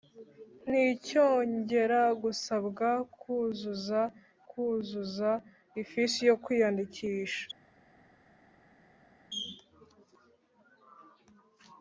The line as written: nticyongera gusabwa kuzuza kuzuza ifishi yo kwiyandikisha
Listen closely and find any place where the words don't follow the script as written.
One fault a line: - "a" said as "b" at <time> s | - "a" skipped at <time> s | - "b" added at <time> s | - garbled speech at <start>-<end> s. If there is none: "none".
none